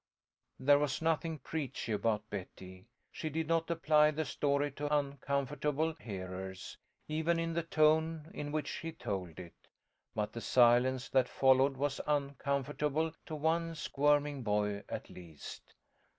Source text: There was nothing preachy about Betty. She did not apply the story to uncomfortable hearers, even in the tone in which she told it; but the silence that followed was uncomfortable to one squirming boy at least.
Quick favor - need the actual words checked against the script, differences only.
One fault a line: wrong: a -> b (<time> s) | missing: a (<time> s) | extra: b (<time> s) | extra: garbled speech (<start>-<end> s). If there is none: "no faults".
no faults